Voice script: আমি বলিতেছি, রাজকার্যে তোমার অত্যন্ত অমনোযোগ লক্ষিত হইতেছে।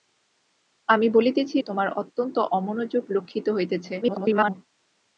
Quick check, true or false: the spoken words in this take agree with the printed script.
false